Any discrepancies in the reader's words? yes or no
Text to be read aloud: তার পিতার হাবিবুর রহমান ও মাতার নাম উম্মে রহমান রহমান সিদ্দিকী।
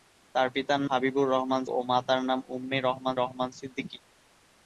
no